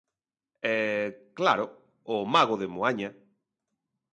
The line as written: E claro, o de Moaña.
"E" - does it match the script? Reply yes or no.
yes